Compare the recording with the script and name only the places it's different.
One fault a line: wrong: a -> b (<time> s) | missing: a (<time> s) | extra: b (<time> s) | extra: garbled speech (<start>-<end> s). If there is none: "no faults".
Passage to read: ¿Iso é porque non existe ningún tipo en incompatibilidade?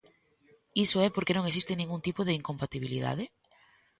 wrong: en -> de (2.2 s)